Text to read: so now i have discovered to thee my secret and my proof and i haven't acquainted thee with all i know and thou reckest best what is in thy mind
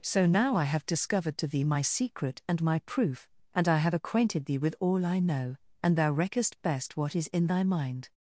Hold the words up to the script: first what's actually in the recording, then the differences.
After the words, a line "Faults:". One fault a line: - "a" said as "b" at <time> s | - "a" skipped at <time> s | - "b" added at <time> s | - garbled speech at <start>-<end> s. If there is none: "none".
so now i have discovered to thee my secret and my proof and i have acquainted thee with all i know and thou reckest best what is in thy mind
Faults:
- "haven't" said as "have" at 3.8 s